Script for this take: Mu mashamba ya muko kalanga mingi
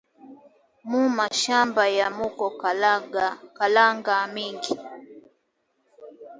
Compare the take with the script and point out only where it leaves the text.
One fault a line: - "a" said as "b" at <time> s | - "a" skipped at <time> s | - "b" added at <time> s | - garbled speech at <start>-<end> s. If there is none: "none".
none